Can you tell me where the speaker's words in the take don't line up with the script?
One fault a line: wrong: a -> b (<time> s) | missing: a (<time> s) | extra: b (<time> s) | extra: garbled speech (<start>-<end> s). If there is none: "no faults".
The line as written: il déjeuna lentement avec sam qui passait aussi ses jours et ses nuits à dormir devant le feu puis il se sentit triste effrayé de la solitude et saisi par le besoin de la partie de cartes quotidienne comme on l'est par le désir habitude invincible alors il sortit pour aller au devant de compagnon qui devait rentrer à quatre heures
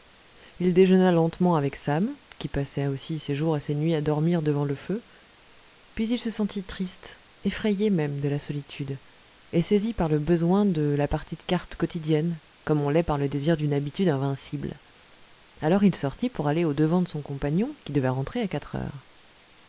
extra: même (7.9 s)
extra: d'une (13.6 s)
extra: son (17.1 s)